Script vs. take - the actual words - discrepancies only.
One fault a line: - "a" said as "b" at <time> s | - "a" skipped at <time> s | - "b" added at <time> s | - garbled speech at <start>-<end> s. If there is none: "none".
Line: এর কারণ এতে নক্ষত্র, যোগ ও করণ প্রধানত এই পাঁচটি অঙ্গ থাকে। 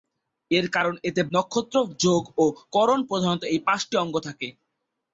none